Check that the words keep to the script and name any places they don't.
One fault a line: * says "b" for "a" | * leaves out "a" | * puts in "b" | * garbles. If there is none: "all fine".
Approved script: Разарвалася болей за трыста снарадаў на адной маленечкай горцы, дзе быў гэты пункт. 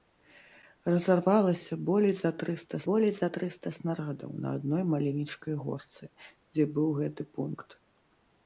* puts in "болей за трыста"